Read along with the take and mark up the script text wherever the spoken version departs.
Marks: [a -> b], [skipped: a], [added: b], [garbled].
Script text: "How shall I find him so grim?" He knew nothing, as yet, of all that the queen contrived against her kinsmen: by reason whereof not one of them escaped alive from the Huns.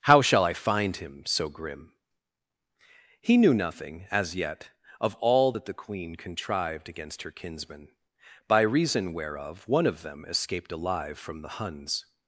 "How shall I find him so grim?" He knew nothing, as yet, of all that the queen contrived against her kinsmen: by reason whereof [skipped: not] one of them escaped alive from the Huns.